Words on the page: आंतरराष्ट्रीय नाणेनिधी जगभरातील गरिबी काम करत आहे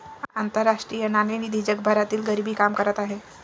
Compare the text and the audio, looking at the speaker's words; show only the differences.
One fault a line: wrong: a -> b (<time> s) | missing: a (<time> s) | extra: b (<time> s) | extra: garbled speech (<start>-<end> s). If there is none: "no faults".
no faults